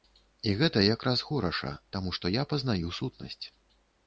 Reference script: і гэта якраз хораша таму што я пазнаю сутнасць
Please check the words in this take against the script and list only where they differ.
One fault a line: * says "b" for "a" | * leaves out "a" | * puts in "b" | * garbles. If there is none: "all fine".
all fine